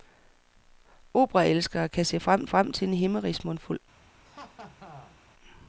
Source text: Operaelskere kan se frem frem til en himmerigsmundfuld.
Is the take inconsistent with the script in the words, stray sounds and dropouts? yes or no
yes